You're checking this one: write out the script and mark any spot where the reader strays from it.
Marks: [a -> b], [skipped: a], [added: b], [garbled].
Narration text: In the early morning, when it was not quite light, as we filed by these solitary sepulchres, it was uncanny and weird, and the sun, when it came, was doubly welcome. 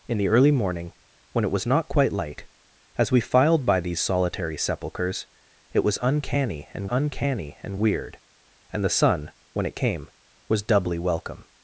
In the early morning, when it was not quite light, as we filed by these solitary sepulchres, it was uncanny and [added: uncanny and] weird, and the sun, when it came, was doubly welcome.